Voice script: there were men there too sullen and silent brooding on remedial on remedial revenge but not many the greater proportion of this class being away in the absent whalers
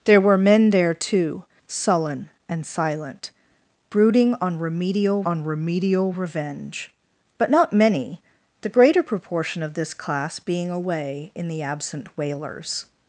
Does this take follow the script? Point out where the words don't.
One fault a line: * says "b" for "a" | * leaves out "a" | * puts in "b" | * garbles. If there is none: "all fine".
all fine